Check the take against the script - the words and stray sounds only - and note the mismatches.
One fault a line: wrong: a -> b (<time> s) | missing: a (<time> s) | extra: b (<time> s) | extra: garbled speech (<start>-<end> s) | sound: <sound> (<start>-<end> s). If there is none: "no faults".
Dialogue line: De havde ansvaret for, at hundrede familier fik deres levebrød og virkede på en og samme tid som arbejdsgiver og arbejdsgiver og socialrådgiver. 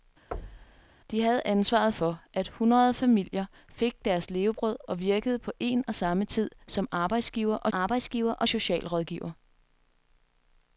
sound: thud (0.3-0.9 s)